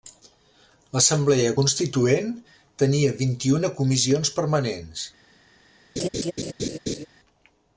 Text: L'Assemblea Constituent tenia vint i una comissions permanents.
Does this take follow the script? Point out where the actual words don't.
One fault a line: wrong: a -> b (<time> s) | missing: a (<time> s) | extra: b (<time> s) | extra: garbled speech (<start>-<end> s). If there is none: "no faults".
no faults